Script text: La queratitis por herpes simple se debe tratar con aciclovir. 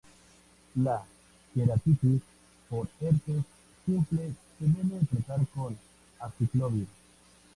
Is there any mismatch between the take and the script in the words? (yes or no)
no